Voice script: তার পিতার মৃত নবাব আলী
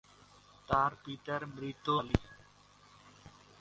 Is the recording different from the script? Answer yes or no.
yes